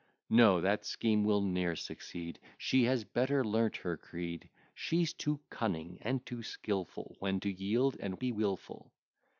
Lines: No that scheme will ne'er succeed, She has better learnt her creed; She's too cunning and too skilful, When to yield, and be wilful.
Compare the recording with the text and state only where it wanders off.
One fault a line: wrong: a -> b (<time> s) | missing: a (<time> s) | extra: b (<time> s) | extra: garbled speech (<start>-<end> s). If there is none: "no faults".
no faults